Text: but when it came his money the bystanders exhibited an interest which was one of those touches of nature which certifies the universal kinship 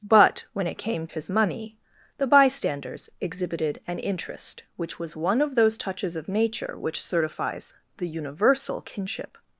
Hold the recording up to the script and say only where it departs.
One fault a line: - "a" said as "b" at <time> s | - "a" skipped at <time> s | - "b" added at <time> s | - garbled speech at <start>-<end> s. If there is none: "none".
none